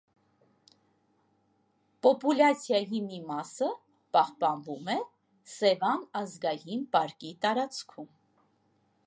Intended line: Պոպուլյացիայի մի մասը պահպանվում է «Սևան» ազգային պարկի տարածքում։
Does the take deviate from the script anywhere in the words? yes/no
no